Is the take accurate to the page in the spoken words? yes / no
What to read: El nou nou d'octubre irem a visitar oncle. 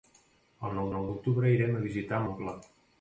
yes